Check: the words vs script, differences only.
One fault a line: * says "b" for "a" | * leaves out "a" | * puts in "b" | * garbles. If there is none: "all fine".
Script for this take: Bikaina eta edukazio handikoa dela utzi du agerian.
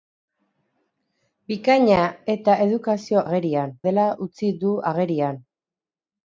* says "agerian" for "handikoa"